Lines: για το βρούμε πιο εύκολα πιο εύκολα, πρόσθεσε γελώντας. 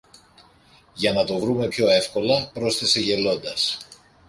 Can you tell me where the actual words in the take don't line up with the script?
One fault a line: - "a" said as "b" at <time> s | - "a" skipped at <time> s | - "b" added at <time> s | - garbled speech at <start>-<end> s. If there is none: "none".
- "να" added at 1.1 s
- "πιο εύκολα" skipped at 2.5 s